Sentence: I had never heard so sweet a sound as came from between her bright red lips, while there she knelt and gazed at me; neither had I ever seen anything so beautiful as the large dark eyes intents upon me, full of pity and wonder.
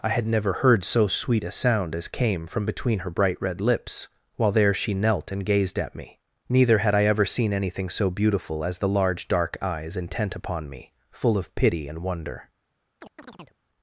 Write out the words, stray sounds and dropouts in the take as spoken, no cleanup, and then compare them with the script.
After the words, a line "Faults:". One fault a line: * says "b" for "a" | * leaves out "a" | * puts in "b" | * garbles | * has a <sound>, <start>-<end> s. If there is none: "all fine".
I had never heard so sweet a sound as came from between her bright red lips, while there she knelt and gazed at me; neither had I ever seen anything so beautiful as the large dark eyes intent upon me, full of pity and wonder.
Faults:
* says "intent" for "intents"
* has a chirp, 13.0-13.6 s